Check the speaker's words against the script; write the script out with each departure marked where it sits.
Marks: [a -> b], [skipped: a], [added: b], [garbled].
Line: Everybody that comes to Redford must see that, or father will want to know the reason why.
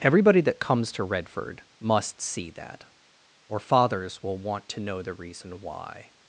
Everybody that comes to Redford must see that, or [father -> fathers] will want to know the reason why.